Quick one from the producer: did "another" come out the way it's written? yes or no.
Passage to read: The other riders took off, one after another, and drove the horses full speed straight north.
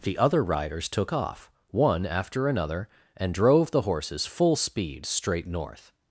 yes